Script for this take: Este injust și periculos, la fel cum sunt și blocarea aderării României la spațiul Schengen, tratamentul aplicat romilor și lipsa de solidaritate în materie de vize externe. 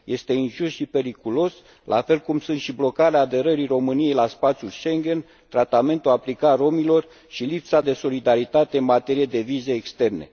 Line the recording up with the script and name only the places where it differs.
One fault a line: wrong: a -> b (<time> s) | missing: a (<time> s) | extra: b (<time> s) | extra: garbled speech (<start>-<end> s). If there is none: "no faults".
no faults